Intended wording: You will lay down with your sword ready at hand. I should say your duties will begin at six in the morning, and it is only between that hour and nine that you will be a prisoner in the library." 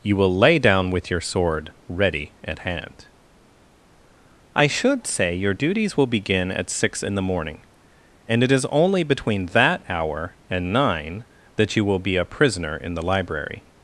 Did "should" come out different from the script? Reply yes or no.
no